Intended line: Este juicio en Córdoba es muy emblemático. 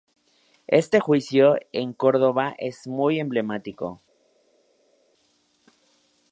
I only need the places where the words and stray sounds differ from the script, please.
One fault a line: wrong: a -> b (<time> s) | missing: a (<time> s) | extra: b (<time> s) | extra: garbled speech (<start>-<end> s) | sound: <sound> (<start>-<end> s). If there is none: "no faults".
no faults